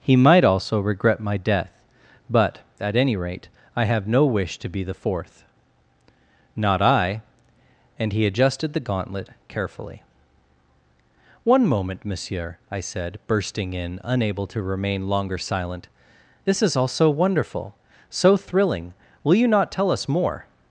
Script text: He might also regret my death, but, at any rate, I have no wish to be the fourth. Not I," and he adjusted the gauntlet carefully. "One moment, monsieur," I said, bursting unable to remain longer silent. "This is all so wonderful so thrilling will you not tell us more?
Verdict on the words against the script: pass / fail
fail